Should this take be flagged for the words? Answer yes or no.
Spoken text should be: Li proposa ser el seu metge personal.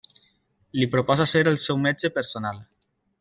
no